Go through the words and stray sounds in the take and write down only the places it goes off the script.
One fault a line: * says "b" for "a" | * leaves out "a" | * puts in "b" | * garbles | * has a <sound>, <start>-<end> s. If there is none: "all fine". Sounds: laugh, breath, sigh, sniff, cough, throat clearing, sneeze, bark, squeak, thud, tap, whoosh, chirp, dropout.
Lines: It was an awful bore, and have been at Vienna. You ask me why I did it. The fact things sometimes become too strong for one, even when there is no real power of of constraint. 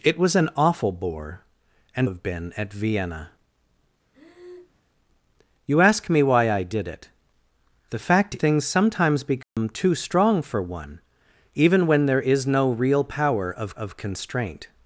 * has a breath, 4.1-4.8 s
* has a dropout, 9.4-9.6 s